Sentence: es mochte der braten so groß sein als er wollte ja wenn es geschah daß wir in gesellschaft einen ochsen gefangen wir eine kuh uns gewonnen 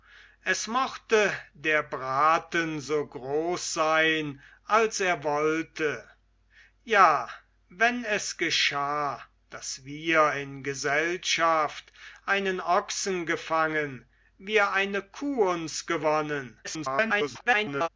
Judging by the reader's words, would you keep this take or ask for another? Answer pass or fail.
fail